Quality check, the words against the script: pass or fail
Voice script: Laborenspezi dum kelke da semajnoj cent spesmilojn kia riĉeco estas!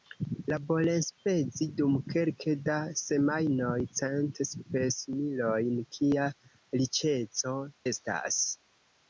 pass